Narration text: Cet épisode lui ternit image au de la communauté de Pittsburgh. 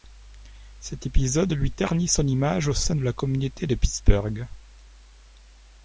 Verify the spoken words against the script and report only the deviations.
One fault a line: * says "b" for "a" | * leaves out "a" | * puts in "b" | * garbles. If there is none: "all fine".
* puts in "son"
* puts in "sein"